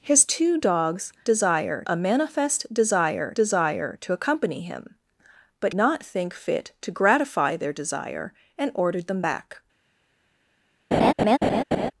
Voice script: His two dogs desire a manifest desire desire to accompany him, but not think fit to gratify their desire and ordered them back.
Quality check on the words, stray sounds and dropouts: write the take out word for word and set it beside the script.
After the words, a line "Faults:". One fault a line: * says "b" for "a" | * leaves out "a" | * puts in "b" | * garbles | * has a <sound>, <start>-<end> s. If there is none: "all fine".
His two dogs desire a manifest desire desire to accompany him, but not think fit to gratify their desire and ordered them back.
Faults:
* has a laugh, 10.9-11.9 s